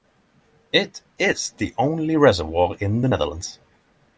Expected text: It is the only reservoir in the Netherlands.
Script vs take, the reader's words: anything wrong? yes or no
no